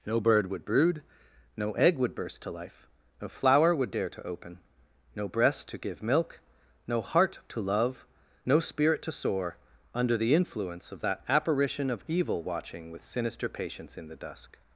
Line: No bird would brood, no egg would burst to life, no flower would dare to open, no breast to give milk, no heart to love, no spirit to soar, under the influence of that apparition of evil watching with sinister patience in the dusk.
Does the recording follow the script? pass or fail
pass